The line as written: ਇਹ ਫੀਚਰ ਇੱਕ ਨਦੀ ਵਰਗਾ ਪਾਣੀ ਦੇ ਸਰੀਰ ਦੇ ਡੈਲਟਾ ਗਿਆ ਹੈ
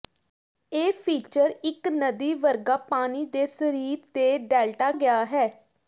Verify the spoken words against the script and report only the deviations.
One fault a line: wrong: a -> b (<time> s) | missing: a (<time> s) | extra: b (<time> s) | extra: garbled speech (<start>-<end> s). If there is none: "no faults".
no faults